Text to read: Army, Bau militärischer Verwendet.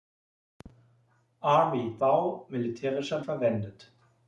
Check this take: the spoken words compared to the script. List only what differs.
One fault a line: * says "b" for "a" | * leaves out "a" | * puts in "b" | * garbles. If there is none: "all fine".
all fine